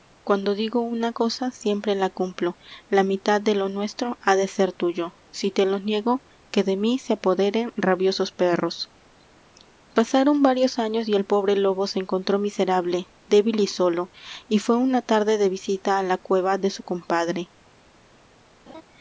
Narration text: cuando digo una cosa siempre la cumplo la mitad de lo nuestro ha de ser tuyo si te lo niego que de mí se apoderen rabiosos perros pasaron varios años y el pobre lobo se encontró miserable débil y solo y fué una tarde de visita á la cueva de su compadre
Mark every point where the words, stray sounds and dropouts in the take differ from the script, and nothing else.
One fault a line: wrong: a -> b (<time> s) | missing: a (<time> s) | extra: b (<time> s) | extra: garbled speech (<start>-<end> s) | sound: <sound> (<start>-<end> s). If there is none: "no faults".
sound: laugh (18.7-18.8 s)